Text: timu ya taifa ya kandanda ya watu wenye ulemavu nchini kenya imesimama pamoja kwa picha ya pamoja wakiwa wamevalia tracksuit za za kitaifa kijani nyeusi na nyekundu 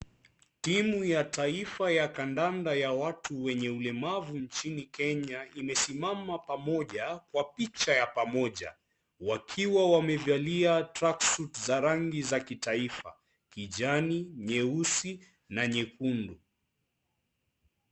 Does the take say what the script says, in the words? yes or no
no